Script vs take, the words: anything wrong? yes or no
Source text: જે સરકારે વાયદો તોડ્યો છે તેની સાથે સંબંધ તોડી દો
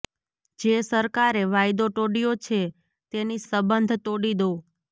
yes